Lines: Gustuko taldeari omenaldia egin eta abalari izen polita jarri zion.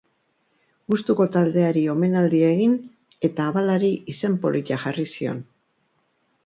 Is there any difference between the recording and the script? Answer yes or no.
no